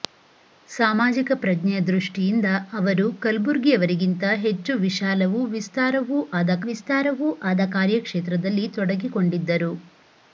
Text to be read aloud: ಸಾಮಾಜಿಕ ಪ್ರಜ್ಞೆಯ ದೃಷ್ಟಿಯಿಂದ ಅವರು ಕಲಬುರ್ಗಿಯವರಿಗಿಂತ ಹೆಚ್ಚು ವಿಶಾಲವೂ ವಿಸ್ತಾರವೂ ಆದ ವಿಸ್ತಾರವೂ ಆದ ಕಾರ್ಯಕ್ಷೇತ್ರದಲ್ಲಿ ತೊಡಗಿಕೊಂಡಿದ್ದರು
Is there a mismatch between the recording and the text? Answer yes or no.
no